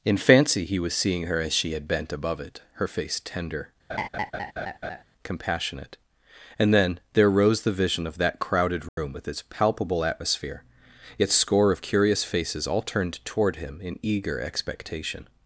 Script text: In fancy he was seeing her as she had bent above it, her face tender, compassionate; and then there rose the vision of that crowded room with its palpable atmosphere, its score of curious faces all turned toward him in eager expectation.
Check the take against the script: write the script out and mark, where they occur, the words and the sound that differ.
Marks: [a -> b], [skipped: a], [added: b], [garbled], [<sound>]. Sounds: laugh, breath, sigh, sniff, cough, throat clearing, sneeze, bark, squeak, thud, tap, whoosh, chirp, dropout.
In fancy he was seeing her as she had bent above it, her face tender, [laugh] compassionate; and then there rose the vision of that crowded room [dropout] with its palpable atmosphere, its score of curious faces all turned toward him in eager expectation.